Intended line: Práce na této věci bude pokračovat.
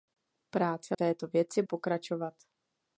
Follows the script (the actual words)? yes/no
no